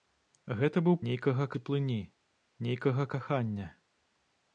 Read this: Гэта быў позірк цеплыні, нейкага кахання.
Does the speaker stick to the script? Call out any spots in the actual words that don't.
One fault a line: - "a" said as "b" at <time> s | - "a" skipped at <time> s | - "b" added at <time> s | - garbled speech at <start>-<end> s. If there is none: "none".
- "позірк" said as "нейкага" at 1.1 s